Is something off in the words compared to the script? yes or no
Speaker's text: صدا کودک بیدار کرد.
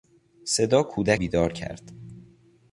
no